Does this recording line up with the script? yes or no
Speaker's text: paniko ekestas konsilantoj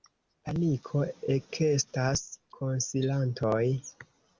yes